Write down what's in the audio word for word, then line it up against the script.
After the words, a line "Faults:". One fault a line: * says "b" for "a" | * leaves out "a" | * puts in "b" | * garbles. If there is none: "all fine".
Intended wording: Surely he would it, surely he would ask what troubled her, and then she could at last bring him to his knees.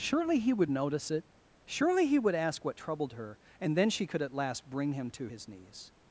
Surely he would notice it, surely he would ask what troubled her, and then she could at last bring him to his knees.
Faults:
* puts in "notice"